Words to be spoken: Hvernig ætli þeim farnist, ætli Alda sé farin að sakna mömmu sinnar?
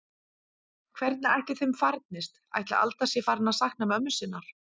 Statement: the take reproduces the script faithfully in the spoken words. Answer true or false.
true